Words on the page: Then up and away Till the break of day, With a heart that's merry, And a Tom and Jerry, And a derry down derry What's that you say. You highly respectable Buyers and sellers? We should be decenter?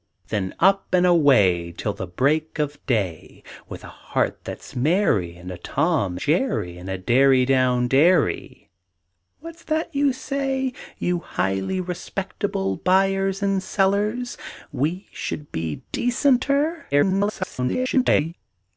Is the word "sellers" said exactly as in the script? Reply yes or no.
yes